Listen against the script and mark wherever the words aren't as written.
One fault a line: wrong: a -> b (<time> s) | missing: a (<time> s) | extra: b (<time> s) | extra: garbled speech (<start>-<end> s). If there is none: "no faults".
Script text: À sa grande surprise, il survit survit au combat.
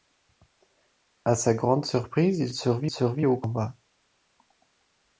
no faults